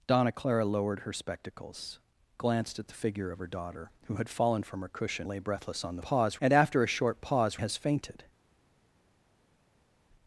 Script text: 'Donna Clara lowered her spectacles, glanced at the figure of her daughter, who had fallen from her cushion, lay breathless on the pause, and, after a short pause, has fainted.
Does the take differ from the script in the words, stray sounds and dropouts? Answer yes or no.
no